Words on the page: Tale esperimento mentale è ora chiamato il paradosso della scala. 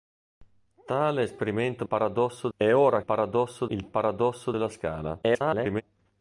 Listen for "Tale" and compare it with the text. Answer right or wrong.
right